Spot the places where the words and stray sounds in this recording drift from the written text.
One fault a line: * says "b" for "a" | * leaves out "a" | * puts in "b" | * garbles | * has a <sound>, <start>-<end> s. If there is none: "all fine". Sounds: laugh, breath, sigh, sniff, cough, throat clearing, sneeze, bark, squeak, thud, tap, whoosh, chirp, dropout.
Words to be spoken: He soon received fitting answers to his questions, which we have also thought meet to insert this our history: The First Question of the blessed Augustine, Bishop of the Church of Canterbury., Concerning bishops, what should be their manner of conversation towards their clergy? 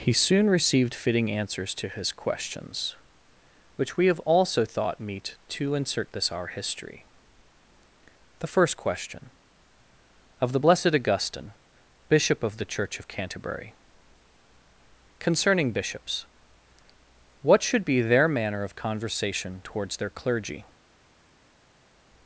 all fine